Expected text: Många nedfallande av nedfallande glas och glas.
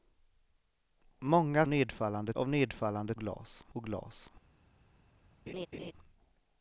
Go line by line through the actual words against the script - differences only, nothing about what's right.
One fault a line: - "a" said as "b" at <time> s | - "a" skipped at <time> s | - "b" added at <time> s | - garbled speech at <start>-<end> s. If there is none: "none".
none